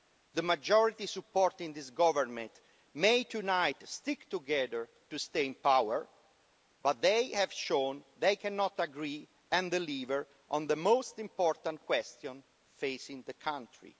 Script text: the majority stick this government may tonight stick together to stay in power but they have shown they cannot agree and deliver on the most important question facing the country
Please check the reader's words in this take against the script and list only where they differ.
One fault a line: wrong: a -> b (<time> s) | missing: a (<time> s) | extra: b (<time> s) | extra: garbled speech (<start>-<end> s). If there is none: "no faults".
wrong: stick -> supporting (1.1 s)